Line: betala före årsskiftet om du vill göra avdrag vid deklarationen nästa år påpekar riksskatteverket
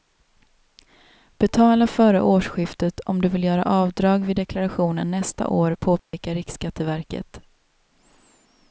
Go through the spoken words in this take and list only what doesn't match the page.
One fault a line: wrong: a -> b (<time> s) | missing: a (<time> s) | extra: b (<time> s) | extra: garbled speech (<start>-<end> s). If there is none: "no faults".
no faults